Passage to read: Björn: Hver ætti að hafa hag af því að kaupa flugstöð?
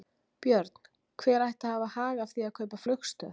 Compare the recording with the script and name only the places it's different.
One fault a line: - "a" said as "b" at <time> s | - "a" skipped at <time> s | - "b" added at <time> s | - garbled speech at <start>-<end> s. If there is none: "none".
none